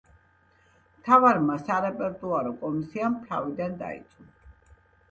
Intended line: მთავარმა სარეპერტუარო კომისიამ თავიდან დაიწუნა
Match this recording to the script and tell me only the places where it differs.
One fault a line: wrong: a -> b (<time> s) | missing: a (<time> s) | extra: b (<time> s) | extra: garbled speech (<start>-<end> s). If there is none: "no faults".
no faults